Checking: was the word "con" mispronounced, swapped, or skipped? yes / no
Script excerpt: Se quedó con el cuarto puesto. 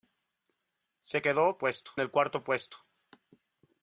yes